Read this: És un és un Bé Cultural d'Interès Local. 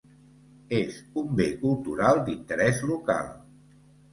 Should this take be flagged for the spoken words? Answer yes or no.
yes